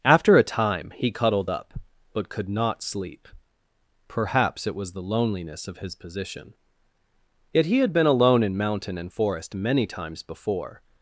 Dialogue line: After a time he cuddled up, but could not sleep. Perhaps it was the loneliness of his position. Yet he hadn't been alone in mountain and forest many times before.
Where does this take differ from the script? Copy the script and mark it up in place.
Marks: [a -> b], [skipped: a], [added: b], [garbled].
After a time he cuddled up, but could not sleep. Perhaps it was the loneliness of his position. Yet he [hadn't -> had] been alone in mountain and forest many times before.